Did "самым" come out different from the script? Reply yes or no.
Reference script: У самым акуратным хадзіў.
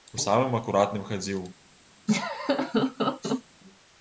no